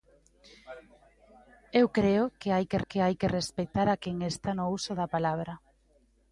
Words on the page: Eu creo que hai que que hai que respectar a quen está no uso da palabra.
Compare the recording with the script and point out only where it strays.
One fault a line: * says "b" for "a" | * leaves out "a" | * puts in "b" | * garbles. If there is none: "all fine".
all fine